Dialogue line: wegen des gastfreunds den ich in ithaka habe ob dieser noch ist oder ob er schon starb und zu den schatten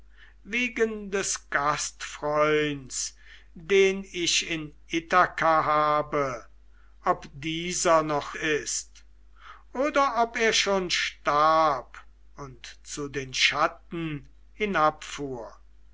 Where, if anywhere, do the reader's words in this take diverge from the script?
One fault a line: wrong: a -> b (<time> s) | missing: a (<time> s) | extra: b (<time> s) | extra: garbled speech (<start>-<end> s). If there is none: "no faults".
no faults